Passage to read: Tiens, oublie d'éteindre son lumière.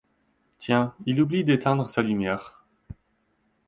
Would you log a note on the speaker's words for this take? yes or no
yes